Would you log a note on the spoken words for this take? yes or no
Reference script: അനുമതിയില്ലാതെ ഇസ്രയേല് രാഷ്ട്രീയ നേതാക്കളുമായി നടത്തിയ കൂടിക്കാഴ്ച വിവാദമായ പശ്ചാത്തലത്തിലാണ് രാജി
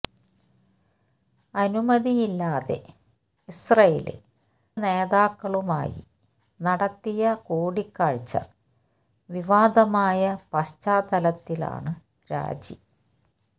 yes